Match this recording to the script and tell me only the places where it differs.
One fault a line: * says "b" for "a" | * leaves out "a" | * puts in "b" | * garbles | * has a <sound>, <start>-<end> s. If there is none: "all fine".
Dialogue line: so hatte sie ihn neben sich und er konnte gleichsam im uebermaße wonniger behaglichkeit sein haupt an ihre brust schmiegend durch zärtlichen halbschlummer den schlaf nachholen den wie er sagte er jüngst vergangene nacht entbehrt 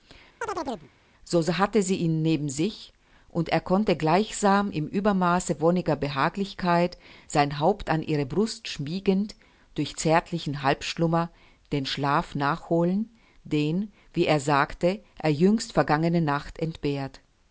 * has a chirp, 0.4-0.9 s